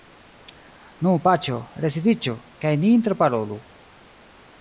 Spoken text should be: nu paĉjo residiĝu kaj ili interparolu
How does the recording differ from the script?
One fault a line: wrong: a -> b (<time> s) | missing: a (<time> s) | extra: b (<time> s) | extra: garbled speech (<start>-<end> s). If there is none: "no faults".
wrong: ili -> ni (2.8 s)